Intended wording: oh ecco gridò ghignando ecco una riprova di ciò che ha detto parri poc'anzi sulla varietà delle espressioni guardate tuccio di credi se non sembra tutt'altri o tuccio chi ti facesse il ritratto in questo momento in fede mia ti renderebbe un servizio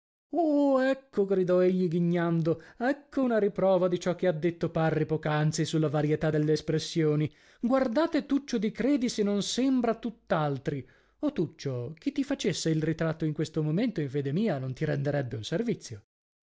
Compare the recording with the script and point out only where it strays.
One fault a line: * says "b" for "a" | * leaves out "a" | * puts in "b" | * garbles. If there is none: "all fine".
* puts in "egli"
* puts in "non"